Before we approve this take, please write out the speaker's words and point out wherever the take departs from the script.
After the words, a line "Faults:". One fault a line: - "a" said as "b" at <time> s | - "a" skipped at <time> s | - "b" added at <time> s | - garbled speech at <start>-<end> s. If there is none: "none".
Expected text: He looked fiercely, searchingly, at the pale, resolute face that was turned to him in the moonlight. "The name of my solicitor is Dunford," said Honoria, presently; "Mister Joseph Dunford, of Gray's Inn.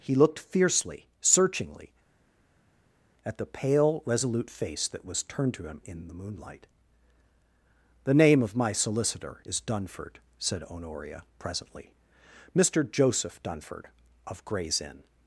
He looked fiercely, searchingly, at the pale, resolute face that was turned to him in the moonlight. "The name of my solicitor is Dunford," said Honoria, presently; "Mister Joseph Dunford, of Gray's Inn.
Faults:
none